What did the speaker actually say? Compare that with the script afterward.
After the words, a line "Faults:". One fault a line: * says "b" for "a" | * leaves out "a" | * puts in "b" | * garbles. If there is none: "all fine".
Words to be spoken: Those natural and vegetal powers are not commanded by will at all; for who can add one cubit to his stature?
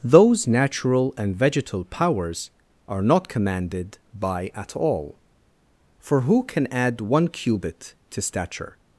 Those natural and vegetal powers are not commanded by at all; for who can add one cubit to stature?
Faults:
* leaves out "will"
* leaves out "his"